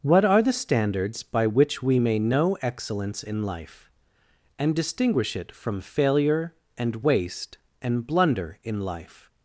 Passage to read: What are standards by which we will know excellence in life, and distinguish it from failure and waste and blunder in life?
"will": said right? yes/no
no